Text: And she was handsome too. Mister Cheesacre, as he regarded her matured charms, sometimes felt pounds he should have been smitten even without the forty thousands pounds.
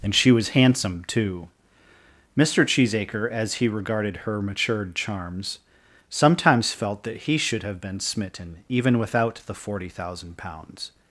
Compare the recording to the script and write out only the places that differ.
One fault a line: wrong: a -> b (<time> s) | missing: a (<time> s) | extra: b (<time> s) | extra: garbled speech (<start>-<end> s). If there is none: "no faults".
wrong: pounds -> that (7.0 s)
wrong: thousands -> thousand (9.9 s)